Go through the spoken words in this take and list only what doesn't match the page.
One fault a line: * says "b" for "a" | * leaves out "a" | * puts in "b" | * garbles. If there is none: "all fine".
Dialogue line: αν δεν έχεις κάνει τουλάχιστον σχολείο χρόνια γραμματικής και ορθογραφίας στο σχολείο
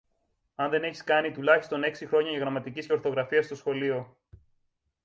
* says "έξι" for "σχολείο"